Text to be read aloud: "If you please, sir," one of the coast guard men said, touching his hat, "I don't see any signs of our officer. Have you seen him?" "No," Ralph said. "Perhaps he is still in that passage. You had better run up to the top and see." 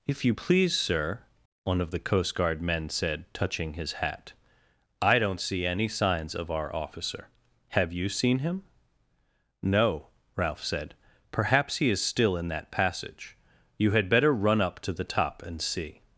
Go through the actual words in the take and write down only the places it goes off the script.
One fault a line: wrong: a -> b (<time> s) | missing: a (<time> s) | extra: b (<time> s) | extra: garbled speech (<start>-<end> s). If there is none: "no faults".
no faults